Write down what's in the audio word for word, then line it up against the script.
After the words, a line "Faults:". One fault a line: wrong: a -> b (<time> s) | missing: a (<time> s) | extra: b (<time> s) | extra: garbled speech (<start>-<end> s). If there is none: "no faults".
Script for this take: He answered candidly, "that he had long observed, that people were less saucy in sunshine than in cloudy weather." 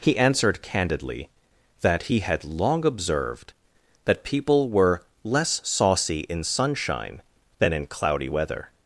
He answered candidly, "that he had long observed, that people were less saucy in sunshine than in cloudy weather."
Faults:
no faults